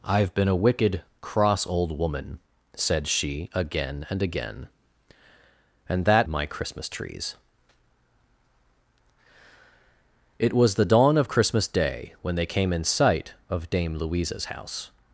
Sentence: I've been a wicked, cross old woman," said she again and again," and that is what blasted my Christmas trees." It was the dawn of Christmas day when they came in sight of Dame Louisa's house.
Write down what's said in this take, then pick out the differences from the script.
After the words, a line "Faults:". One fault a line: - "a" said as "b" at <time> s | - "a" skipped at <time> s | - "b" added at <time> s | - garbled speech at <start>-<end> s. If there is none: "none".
I've been a wicked, cross old woman," said she again and again," and that my Christmas trees." It was the dawn of Christmas day when they came in sight of Dame Louisa's house.
Faults:
- "is what blasted" skipped at 6.3 s